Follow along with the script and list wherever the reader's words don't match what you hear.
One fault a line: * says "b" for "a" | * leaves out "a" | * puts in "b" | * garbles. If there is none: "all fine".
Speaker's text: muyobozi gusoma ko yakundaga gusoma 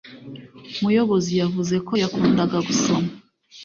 * says "yavuze" for "gusoma"